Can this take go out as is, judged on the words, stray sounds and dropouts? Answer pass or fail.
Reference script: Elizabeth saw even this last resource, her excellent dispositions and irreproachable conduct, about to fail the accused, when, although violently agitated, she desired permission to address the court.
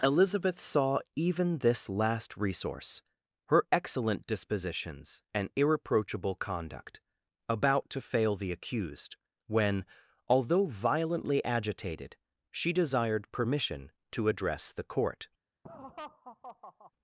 fail